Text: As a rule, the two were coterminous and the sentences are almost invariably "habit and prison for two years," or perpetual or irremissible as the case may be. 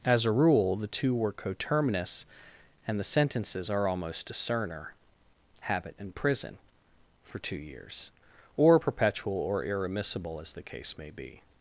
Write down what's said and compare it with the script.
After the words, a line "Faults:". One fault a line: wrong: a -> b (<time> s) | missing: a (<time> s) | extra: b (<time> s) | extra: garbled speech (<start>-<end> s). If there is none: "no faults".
As a rule, the two were coterminous and the sentences are almost discerner "habit and prison for two years," or perpetual or irremissible as the case may be.
Faults:
wrong: invariably -> discerner (4.3 s)